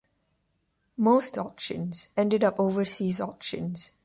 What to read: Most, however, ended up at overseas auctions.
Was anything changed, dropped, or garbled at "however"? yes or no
yes